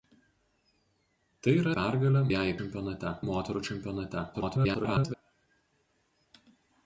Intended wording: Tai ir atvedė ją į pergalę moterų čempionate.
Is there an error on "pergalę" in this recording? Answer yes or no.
yes